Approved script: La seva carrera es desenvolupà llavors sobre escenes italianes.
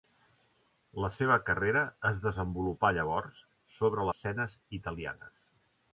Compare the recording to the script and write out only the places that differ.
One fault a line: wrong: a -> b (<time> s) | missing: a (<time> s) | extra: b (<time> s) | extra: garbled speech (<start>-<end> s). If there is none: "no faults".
no faults